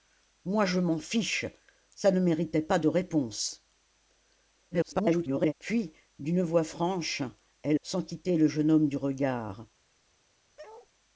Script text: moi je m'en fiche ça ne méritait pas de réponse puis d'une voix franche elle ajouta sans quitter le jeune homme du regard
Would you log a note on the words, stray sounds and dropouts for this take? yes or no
yes